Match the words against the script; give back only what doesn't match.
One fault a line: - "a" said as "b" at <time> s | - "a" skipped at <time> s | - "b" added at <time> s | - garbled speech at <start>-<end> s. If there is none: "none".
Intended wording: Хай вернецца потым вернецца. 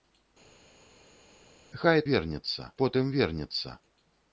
none